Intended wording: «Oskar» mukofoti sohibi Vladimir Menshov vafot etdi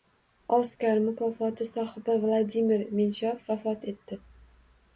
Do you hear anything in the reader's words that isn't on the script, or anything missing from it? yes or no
no